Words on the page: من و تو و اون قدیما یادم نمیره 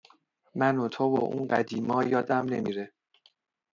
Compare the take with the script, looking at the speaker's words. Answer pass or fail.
pass